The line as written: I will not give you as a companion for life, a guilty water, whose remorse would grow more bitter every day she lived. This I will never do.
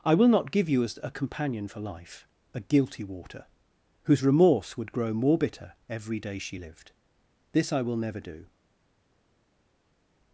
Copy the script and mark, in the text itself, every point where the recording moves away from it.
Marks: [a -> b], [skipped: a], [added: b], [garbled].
I will not give you as a companion for life, a guilty water, whose remorse would grow more bitter every day she lived. This I will never do.